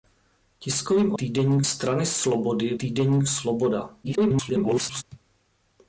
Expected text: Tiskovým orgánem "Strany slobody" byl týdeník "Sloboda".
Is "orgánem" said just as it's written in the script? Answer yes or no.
no